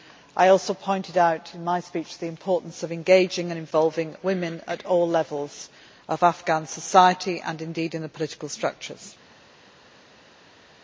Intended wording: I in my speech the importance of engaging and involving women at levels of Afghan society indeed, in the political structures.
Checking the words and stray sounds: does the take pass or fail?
fail